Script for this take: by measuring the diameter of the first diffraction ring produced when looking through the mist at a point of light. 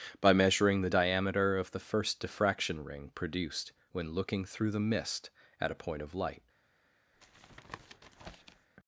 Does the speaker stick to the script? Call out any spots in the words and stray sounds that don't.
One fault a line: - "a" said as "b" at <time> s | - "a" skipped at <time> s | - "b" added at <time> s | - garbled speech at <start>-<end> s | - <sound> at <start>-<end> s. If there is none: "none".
- tap at 7.1-8.7 s